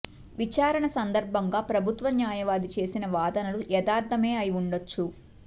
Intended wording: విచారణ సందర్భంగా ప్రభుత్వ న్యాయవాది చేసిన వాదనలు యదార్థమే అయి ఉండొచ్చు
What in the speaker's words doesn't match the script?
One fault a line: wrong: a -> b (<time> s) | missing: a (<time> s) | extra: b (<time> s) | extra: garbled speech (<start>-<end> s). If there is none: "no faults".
no faults